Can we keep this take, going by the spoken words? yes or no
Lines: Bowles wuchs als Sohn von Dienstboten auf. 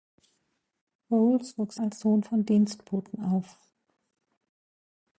yes